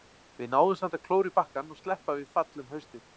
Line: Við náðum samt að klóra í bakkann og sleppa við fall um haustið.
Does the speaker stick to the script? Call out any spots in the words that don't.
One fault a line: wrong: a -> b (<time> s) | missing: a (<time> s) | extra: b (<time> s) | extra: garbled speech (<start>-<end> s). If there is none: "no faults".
no faults